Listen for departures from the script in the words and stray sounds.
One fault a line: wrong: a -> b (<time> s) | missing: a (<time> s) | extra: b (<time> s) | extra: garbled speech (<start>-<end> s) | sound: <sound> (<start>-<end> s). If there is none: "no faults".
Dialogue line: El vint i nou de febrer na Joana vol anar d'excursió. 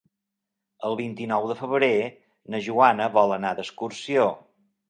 no faults